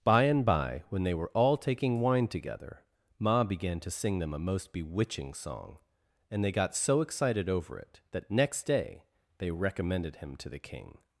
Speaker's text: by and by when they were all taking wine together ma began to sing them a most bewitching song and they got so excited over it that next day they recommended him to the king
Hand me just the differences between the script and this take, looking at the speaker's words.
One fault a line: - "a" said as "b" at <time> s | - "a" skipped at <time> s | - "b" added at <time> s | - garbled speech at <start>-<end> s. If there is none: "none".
none